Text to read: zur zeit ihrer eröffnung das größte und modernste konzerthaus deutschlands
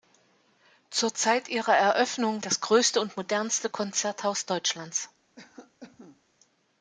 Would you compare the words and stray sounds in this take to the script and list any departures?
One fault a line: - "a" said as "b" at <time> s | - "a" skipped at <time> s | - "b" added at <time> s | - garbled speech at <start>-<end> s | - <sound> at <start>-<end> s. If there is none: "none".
- cough at 5.4-6.2 s